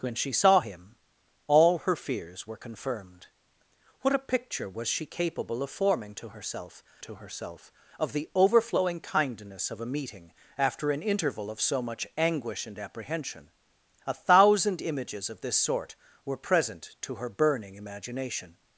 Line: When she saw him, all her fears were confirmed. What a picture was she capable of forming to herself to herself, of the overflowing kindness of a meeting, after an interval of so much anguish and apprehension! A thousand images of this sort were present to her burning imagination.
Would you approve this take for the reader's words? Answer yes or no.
yes